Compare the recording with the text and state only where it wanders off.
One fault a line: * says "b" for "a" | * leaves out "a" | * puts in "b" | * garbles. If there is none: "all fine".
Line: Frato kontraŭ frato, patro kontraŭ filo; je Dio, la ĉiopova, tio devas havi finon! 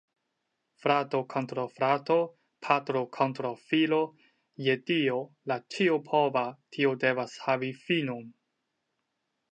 all fine